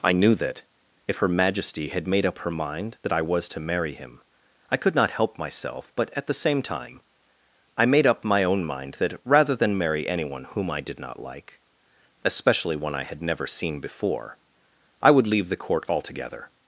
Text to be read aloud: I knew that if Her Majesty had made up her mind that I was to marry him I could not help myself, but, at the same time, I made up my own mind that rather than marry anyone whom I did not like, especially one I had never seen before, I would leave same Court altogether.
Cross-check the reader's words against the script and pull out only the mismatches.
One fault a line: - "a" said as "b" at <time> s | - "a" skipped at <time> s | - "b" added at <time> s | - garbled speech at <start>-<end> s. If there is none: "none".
- "same" said as "the" at 15.5 s